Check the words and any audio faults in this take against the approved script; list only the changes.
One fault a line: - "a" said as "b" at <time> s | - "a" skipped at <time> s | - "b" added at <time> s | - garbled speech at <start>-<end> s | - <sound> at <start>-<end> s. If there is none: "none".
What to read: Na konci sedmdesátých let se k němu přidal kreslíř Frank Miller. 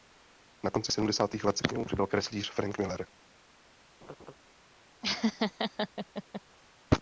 - laugh at 4.0-4.3 s
- laugh at 5.0-6.4 s